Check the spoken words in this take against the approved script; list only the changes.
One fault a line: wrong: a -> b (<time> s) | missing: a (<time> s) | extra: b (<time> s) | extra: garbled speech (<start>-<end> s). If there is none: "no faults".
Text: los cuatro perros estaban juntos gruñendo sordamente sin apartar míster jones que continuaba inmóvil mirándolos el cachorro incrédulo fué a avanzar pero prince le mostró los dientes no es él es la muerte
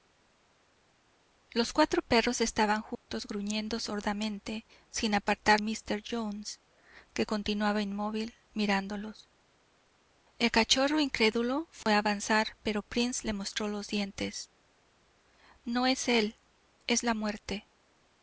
no faults